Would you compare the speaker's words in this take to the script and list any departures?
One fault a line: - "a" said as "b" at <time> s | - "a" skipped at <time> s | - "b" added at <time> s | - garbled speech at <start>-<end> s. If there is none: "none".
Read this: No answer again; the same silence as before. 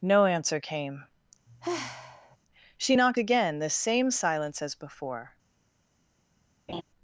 - "came She knocked" added at 0.6 s